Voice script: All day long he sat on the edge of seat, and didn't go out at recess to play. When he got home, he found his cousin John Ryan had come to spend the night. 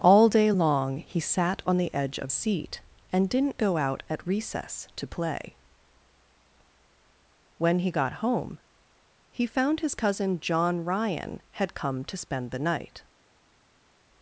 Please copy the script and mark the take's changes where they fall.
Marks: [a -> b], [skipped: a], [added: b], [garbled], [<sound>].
All day long he sat on the edge of seat, and didn't go out at recess to play. When he got home, he found his cousin John Ryan had come to spend the night.